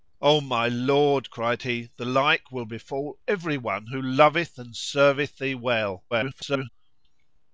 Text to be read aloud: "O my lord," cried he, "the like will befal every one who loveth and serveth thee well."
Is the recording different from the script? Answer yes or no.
yes